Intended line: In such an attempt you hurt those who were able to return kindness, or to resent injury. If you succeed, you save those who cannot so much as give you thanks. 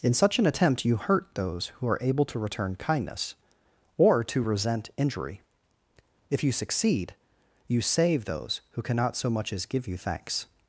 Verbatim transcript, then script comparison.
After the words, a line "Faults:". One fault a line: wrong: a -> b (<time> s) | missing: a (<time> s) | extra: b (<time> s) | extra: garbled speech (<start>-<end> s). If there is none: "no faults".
In such an attempt you hurt those who are able to return kindness, or to resent injury. If you succeed, you save those who cannot so much as give you thanks.
Faults:
wrong: were -> are (1.9 s)